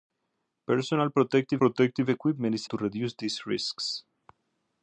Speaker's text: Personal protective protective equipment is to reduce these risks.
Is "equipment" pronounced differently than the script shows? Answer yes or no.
no